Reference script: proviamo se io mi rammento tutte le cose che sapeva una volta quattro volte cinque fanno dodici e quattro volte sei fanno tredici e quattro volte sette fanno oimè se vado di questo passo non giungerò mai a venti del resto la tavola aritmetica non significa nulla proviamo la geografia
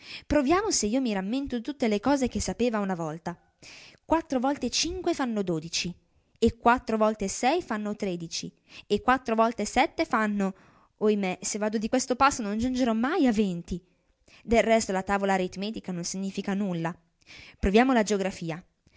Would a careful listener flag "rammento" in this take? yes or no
no